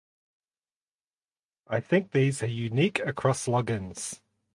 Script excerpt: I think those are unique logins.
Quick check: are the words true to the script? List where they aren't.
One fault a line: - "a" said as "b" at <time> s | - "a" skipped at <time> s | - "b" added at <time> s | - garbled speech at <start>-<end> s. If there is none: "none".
- "those" said as "these" at 2.1 s
- "across" added at 3.0 s